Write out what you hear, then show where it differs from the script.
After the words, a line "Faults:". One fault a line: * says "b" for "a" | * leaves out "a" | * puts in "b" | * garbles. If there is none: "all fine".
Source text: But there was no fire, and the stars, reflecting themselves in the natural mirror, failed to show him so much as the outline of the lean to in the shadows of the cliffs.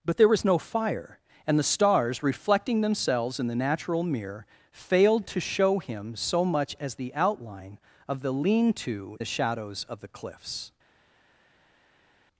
But there was no fire, and the stars, reflecting themselves in the natural mirror, failed to show him so much as the outline of the lean to the shadows of the cliffs.
Faults:
* leaves out "in"